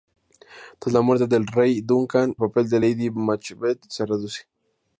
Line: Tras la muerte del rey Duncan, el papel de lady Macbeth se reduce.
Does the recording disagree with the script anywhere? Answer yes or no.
yes